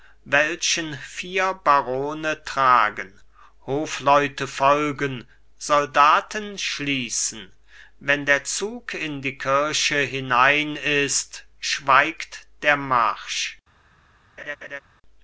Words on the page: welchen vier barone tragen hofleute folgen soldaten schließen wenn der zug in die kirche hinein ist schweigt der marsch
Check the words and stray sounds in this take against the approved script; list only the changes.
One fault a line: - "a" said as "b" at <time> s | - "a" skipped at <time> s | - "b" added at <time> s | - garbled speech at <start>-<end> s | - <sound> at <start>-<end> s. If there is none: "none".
- laugh at 14.4-14.8 s